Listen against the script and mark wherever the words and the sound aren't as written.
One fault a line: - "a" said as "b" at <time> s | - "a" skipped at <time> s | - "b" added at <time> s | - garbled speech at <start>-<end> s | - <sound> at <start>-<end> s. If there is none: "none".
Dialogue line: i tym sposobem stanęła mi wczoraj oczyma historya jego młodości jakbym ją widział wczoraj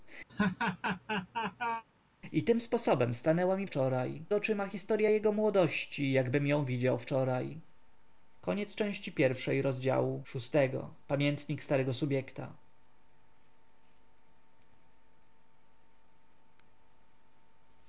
- laugh at 0.3-1.8 s